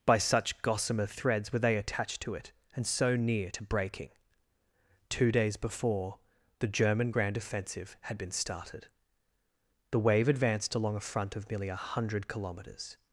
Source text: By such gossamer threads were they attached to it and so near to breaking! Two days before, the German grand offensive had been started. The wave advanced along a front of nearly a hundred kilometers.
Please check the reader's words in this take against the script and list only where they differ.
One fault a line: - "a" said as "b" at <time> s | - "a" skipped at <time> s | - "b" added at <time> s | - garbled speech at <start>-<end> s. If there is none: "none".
none